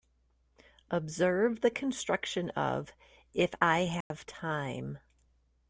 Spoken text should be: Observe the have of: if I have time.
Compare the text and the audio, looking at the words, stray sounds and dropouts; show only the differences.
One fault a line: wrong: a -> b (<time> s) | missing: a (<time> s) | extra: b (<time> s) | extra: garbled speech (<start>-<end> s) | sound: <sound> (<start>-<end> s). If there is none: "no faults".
wrong: have -> construction (1.7 s)
sound: dropout (4.0-4.1 s)